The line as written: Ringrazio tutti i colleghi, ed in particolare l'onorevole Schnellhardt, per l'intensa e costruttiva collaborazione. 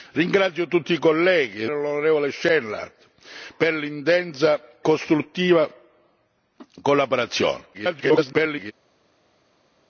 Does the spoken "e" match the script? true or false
false